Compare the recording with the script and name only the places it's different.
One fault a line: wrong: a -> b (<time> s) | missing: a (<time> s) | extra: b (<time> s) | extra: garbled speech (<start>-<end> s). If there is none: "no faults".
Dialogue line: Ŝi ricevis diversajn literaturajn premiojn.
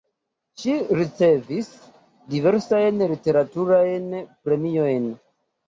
no faults